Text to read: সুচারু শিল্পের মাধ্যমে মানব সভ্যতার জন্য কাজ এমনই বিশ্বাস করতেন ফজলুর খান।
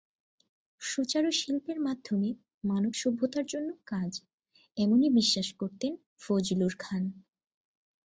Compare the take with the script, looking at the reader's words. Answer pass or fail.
pass